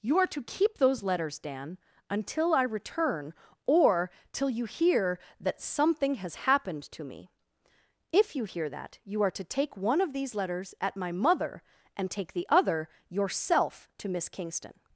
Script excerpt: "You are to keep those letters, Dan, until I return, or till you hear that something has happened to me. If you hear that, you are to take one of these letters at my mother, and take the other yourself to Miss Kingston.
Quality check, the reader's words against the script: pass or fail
pass